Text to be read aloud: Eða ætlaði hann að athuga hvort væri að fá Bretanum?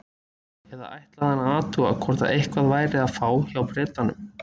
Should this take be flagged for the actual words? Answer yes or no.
yes